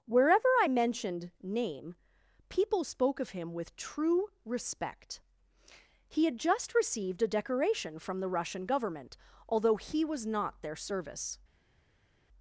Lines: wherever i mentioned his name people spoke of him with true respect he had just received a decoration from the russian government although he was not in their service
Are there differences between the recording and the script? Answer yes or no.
yes